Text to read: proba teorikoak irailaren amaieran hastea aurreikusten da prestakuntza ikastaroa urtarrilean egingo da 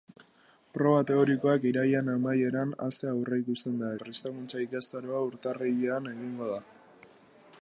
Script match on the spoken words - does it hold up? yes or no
yes